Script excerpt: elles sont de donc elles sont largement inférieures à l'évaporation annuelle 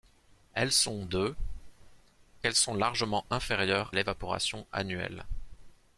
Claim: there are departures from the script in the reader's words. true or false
true